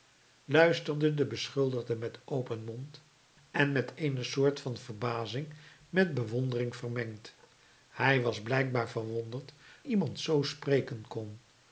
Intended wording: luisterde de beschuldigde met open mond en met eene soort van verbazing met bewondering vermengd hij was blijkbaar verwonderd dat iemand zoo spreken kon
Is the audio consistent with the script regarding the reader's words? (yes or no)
no